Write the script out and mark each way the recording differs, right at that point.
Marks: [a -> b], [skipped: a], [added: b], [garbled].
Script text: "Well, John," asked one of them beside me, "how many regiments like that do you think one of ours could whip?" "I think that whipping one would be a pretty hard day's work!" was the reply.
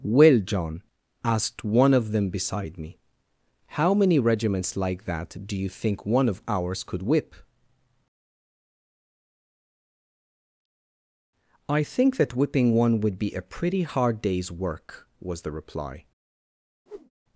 "Well, John," asked one of them beside me, "how many regiments like that do you think one of ours could whip?" "I think that whipping one would be a pretty hard day's work!" was the reply.